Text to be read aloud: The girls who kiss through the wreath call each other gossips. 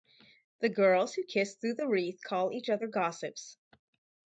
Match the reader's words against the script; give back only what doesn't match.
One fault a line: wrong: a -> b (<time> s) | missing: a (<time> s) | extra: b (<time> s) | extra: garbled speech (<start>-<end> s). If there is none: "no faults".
no faults